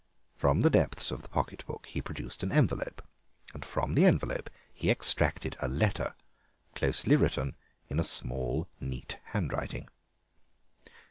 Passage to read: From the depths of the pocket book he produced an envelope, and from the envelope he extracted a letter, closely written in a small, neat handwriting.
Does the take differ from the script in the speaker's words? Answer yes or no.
no